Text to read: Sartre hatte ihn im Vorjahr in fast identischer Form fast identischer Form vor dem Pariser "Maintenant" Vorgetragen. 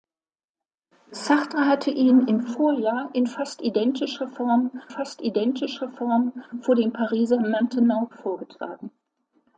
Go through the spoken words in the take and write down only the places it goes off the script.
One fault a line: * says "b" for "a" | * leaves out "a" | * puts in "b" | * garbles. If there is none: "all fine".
all fine